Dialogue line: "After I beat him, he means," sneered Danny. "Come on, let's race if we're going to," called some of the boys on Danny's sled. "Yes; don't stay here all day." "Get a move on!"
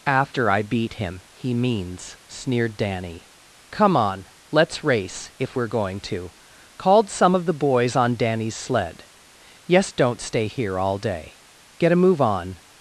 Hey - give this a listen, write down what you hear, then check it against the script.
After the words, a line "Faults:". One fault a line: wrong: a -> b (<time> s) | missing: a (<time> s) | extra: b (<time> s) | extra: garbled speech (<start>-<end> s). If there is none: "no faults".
"After I beat him, he means," sneered Danny. "Come on, let's race if we're going to," called some of the boys on Danny's sled. "Yes; don't stay here all day." "Get a move on!"
Faults:
no faults